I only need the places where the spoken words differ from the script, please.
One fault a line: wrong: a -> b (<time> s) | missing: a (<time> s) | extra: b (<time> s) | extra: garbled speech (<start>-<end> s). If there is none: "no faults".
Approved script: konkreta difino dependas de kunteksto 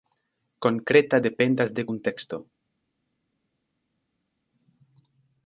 missing: difino (1.2 s)